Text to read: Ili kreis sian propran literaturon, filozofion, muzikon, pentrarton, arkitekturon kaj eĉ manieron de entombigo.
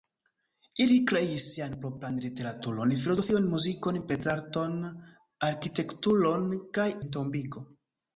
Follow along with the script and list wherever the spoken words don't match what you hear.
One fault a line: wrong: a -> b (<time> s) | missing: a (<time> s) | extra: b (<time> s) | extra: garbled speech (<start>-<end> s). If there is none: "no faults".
missing: eĉ manieron de (6.9 s)